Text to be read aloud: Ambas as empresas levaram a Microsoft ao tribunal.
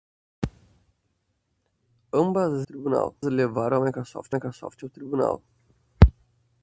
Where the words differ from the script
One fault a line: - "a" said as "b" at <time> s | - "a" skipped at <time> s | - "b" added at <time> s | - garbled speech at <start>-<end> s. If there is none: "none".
- "empresas" said as "tribunal" at 2.6 s
- "Microsoft" added at 4.3 s